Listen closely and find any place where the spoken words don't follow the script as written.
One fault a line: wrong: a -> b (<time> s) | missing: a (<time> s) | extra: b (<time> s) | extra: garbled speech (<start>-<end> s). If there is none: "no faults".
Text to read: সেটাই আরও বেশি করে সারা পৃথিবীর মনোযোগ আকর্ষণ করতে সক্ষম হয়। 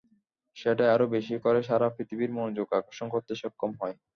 no faults